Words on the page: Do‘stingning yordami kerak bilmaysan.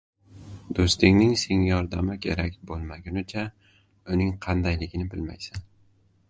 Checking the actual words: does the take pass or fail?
fail